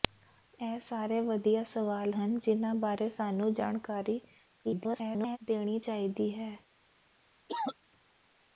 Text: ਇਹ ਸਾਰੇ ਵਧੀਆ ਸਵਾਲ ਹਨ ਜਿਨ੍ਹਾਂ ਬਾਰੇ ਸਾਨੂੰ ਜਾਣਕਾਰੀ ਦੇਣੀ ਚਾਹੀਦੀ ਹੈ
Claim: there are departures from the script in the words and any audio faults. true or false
true